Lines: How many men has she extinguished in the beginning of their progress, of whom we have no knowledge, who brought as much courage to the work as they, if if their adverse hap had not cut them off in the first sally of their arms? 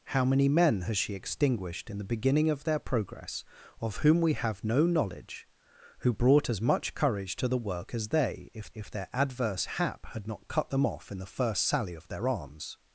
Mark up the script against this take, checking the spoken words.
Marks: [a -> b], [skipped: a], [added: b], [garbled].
How many men has she extinguished in the beginning of their progress, of whom we have no knowledge, who brought as much courage to the work as they, if if their adverse hap had not cut them off in the first sally of their arms?